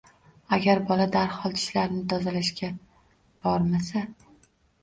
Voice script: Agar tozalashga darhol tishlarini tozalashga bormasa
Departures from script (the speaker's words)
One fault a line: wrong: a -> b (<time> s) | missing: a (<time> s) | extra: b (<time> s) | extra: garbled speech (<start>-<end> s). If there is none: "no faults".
wrong: tozalashga -> bola (0.9 s)